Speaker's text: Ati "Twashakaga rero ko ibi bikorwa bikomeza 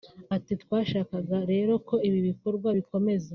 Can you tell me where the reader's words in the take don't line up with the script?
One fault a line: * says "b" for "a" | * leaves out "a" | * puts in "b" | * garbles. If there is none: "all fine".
all fine